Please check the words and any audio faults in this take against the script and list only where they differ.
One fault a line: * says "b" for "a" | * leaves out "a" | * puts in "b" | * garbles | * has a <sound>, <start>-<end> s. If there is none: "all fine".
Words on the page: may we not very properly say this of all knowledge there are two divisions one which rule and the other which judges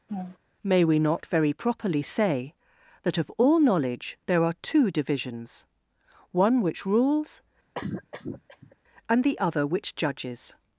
* has a laugh, 0.1-0.4 s
* says "that" for "this"
* says "rules" for "rule"
* has a cough, 7.7-8.8 s